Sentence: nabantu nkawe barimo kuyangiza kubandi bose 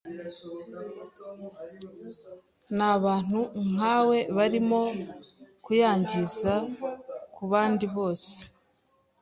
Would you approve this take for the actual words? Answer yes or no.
yes